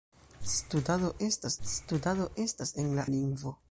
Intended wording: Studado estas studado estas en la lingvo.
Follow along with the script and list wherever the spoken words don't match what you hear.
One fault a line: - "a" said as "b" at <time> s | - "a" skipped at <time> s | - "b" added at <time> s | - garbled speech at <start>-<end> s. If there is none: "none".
none